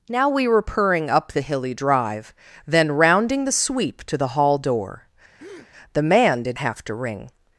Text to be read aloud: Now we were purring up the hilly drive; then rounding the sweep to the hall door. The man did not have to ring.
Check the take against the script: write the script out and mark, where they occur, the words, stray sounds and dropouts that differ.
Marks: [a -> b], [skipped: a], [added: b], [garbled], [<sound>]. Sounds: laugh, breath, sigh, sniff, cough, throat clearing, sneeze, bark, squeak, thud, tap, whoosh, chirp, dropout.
Now we were purring up the hilly drive; then rounding the sweep to the hall door. [breath] The man did [skipped: not] have to ring.